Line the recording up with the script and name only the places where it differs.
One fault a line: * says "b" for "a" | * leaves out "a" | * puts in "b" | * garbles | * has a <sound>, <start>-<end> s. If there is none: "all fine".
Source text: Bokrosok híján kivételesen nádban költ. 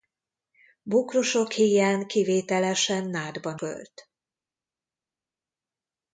all fine